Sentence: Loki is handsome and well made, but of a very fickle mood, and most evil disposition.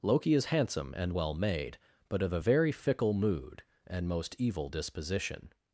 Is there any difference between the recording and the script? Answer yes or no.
no